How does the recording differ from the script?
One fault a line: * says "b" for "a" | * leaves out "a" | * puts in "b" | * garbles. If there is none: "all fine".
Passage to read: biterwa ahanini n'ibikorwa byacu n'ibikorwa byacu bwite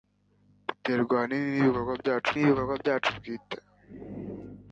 all fine